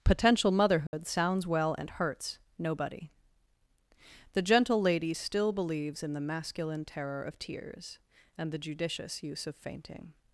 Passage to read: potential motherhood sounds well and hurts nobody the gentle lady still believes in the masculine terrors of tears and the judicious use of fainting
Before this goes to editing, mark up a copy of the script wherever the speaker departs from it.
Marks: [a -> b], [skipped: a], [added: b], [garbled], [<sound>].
potential motherhood [dropout] sounds well and hurts nobody the gentle lady still believes in the masculine [terrors -> terror] of tears and the judicious use of fainting